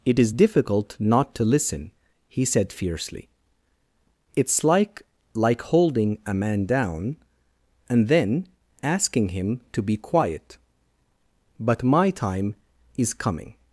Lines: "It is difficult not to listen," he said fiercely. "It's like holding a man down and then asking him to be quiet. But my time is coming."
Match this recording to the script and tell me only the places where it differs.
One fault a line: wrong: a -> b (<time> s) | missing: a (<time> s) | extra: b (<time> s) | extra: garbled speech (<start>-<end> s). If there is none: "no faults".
extra: like (5.3 s)